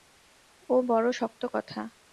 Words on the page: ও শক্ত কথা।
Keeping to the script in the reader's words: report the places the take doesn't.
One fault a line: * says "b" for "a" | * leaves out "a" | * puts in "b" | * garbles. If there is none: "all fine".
* puts in "বড়ো"